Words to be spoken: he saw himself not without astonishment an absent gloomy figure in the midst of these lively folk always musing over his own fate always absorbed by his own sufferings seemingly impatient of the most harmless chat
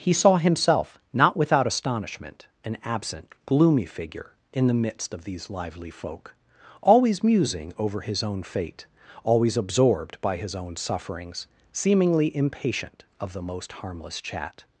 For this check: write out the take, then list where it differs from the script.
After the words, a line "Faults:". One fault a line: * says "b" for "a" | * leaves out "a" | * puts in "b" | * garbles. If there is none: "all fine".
he saw himself not without astonishment an absent gloomy figure in the midst of these lively folk always musing over his own fate always absorbed by his own sufferings seemingly impatient of the most harmless chat
Faults:
all fine